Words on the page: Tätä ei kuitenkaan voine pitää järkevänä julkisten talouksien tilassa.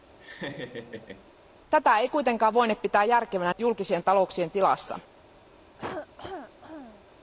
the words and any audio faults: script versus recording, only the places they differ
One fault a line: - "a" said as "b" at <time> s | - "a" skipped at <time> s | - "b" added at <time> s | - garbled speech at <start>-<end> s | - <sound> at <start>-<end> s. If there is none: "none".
- laugh at 0.2-1.3 s
- cough at 5.8-7.0 s